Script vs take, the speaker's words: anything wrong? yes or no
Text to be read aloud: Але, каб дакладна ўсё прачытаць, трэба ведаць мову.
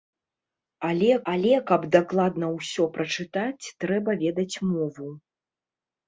yes